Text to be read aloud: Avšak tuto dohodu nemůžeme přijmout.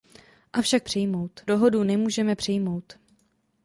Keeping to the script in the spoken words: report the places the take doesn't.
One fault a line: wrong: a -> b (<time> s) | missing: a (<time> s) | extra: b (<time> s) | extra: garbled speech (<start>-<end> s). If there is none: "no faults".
wrong: tuto -> přijmout (0.8 s)